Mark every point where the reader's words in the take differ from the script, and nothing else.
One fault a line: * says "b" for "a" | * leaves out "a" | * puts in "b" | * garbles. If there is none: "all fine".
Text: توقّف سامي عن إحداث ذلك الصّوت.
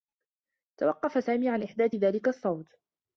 all fine